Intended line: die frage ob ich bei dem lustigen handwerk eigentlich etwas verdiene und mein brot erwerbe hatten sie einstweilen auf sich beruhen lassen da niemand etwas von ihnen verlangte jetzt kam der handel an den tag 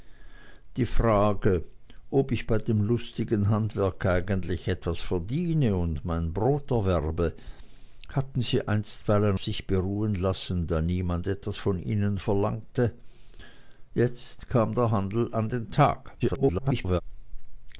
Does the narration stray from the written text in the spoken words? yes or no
yes